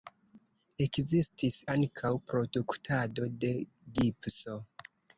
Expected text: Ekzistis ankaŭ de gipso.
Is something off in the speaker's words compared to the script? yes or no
yes